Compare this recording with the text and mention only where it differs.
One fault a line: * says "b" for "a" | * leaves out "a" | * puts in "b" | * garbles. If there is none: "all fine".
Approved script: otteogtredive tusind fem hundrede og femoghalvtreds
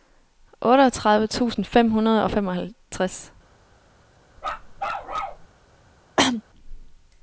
all fine